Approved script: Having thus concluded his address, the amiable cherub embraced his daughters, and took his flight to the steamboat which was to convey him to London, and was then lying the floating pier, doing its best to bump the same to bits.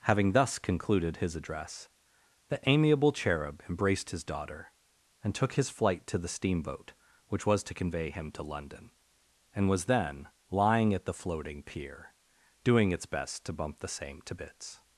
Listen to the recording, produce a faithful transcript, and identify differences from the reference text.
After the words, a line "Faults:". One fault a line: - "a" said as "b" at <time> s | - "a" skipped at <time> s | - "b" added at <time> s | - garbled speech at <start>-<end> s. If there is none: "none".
Having thus concluded his address, the amiable cherub embraced his daughter, and took his flight to the steamboat which was to convey him to London, and was then lying at the floating pier, doing its best to bump the same to bits.
Faults:
- "daughters" said as "daughter" at 4.2 s
- "at" added at 10.9 s